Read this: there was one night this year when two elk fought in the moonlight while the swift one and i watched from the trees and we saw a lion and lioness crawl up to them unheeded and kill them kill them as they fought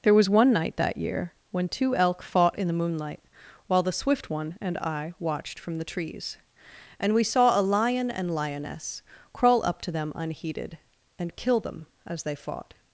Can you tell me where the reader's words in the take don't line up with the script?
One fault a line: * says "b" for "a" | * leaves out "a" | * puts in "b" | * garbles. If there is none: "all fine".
* says "that" for "this"
* leaves out "kill them"